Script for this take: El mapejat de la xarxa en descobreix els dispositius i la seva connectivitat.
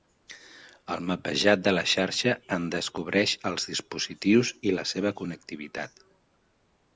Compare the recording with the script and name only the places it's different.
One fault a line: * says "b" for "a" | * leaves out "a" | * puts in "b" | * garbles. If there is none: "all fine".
all fine